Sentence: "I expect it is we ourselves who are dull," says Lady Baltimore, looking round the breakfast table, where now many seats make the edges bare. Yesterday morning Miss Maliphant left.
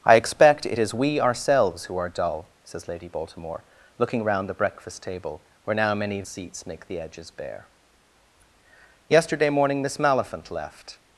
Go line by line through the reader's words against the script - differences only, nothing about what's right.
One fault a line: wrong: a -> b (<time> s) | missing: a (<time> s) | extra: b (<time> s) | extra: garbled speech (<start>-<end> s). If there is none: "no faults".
no faults